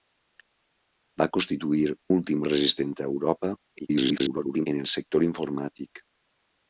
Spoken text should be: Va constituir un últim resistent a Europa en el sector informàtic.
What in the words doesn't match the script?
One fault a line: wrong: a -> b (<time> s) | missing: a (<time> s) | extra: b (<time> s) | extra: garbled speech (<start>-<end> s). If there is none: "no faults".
missing: un (1.8 s)
extra: garbled speech (3.8-4.7 s)